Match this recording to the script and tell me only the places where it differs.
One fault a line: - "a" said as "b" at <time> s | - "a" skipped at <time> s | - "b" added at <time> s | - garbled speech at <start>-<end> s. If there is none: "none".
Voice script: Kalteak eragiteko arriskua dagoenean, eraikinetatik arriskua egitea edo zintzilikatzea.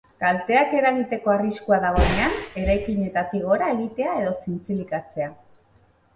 - "arriskua" said as "gora" at 3.5 s